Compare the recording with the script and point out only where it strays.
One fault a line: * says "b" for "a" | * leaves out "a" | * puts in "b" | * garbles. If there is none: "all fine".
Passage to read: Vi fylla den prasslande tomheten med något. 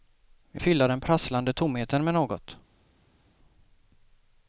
all fine